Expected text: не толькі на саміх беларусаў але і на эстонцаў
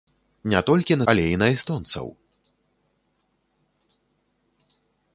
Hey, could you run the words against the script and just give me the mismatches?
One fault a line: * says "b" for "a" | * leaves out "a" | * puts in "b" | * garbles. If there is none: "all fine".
* leaves out "саміх беларусаў"